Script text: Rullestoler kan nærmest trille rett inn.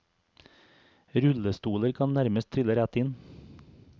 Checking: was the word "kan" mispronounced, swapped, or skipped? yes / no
no